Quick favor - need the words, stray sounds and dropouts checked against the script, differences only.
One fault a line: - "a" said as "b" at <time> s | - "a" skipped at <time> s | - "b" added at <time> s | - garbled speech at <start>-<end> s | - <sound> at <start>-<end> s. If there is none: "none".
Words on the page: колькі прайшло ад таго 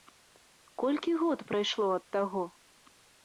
- "год" added at 1.2 s